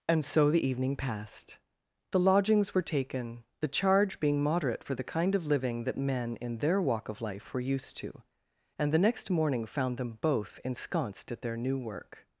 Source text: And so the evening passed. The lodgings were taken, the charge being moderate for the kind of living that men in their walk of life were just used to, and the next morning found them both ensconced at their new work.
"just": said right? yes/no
no